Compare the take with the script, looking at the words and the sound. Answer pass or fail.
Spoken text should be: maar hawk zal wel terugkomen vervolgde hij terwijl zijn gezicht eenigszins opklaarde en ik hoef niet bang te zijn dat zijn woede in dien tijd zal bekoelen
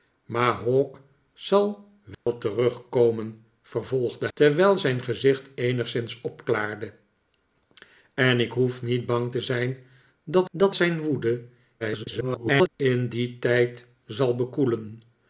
fail